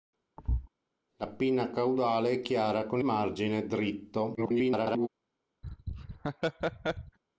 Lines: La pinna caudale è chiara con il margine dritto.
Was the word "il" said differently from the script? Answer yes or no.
yes